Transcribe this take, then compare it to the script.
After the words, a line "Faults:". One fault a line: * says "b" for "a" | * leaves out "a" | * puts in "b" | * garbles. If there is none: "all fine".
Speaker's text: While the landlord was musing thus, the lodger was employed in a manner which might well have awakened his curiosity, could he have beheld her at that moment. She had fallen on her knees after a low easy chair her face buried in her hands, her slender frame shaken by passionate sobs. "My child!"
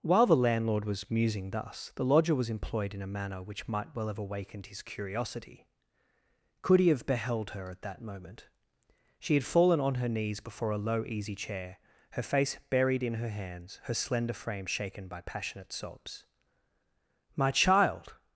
While the landlord was musing thus, the lodger was employed in a manner which might well have awakened his curiosity, could he have beheld her at that moment. She had fallen on her knees before a low easy chair her face buried in her hands, her slender frame shaken by passionate sobs. "My child!"
Faults:
* says "before" for "after"